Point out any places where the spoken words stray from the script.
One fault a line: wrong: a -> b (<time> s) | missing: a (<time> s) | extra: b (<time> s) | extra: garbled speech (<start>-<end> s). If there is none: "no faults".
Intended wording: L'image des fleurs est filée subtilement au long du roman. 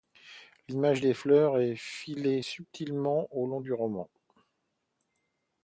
no faults